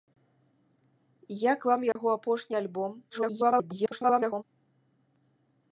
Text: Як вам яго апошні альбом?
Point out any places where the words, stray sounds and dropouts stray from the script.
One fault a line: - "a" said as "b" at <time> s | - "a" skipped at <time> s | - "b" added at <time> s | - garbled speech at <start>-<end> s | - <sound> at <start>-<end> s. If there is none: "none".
- dropout at 1.9-2.0 s
- garbled speech at 3.1-4.4 s